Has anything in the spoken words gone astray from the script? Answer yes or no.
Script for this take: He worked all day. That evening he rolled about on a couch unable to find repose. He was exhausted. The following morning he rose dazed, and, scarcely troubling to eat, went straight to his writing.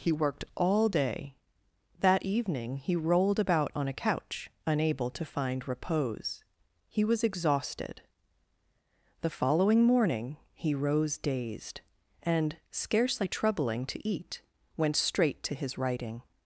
no